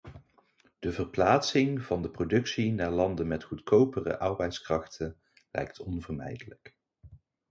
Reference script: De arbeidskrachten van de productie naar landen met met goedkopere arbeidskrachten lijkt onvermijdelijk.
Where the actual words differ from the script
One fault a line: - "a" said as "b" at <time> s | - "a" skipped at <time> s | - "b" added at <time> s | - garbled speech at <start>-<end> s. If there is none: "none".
- "arbeidskrachten" said as "verplaatsing" at 0.9 s
- "met" skipped at 3.4 s